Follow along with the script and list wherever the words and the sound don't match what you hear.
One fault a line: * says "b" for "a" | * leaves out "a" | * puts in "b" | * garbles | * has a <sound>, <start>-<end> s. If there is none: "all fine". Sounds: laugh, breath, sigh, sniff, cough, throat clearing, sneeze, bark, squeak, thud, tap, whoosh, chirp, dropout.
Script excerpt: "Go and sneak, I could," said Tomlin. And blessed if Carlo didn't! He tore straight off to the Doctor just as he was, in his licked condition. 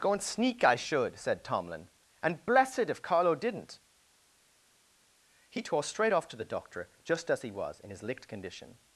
* says "should" for "could"